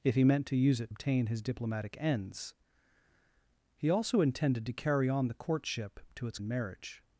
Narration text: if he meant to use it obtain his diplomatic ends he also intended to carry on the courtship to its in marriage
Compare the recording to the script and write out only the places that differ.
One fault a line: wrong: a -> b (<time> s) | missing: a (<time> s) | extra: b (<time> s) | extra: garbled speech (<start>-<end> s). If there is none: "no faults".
no faults